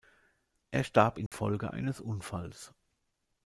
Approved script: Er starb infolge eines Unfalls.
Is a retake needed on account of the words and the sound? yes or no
yes